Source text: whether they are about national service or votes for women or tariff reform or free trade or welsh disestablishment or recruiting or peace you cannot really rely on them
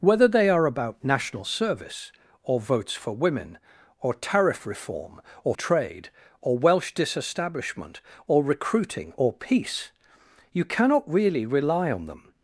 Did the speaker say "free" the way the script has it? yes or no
no